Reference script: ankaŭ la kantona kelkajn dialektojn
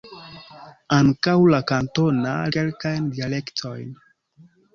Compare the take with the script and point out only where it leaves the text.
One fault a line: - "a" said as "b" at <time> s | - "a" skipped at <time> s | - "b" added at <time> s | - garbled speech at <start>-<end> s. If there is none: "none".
none